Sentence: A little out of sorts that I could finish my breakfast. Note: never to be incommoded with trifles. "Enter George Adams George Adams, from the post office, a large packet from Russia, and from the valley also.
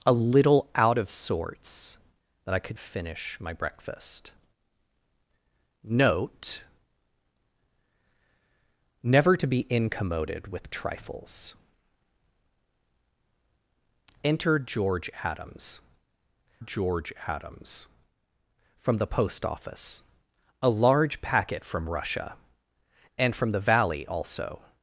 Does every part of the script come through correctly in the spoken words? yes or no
yes